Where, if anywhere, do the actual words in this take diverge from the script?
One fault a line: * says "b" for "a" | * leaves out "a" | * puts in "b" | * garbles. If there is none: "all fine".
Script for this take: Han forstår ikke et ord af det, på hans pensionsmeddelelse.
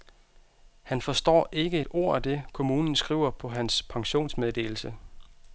* puts in "kommunen skriver"